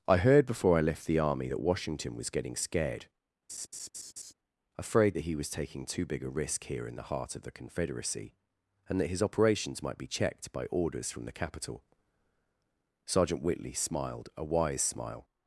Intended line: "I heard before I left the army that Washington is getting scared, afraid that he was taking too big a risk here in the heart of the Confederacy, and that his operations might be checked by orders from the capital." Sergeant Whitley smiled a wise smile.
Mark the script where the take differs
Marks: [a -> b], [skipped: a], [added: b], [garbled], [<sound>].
"I heard before I left the army that Washington [is -> was] getting scared, [laugh] afraid that he was taking too big a risk here in the heart of the Confederacy, and that his operations might be checked by orders from the capital." Sergeant Whitley smiled a wise smile.